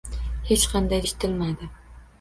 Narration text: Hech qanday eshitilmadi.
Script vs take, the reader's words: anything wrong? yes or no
no